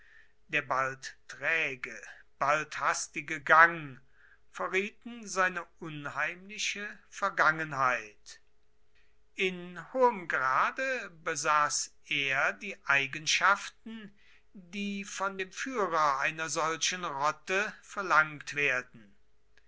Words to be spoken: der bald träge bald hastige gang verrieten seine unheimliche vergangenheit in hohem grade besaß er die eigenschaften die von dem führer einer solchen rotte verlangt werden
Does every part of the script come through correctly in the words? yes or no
yes